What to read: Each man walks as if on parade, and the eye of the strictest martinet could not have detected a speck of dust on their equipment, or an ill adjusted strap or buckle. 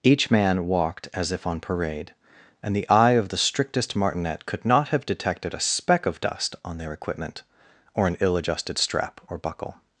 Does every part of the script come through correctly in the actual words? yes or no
no